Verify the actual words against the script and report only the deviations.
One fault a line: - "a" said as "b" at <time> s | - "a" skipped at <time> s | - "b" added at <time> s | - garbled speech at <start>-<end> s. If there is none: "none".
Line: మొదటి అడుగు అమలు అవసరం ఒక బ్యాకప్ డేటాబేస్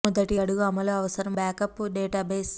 - "ఒక" skipped at 1.4 s